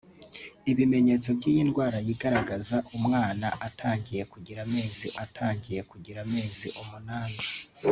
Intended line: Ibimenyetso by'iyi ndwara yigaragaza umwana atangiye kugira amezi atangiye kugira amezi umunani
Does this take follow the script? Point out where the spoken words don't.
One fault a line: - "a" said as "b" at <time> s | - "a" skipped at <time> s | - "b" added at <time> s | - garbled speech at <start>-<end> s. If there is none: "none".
none